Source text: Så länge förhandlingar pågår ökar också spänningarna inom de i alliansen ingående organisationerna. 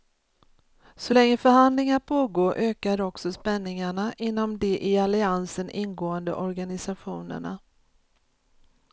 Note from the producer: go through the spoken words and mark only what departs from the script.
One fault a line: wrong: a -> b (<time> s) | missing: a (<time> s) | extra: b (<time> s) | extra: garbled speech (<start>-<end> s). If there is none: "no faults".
no faults